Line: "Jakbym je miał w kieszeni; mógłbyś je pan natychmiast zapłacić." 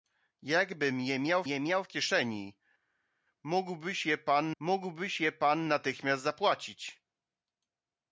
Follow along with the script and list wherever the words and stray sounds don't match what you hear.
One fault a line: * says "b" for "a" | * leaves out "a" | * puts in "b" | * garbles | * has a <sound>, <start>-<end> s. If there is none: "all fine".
* puts in "je miał"
* puts in "mógłbyś je pan"